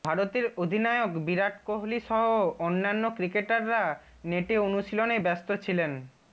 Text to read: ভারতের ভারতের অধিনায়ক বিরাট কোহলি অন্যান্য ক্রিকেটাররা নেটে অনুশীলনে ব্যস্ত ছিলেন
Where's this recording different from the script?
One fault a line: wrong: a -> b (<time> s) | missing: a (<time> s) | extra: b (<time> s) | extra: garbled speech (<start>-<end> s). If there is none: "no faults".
missing: ভারতের (0.5 s)
extra: সহ (2.0 s)